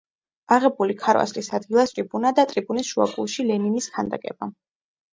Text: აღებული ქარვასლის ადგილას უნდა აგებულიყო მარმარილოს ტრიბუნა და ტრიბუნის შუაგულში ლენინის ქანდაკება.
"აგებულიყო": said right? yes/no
no